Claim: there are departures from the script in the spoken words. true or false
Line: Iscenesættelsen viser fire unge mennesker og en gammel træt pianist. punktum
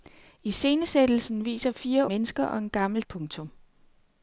true